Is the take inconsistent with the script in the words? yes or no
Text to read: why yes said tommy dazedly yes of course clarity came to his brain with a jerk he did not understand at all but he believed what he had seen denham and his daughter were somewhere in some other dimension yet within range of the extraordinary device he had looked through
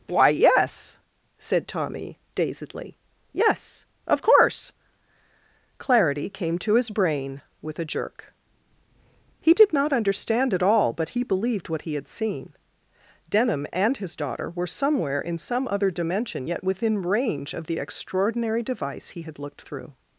no